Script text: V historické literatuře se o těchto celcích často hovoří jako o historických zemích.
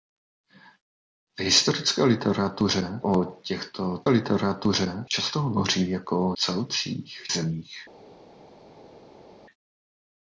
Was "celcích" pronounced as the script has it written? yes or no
no